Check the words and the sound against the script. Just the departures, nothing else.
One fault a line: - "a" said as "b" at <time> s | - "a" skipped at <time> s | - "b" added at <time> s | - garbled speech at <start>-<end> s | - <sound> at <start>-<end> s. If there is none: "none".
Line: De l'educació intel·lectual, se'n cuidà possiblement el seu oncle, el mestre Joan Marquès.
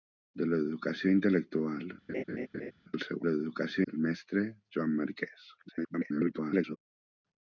- "se'n cuidà possiblement" skipped at 1.9 s
- laugh at 2.1-2.7 s
- "oncle" said as "l'educació" at 3.2 s
- garbled speech at 5.6-6.8 s